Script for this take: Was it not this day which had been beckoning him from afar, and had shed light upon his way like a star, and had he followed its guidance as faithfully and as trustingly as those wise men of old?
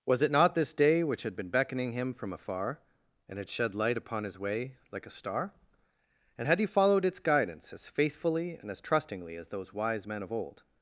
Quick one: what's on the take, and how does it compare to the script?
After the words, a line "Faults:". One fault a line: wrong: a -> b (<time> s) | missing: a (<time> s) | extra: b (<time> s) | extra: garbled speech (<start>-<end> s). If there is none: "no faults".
Was it not this day which had been beckoning him from afar, and had shed light upon his way like a star, and had he followed its guidance as faithfully and as trustingly as those wise men of old?
Faults:
no faults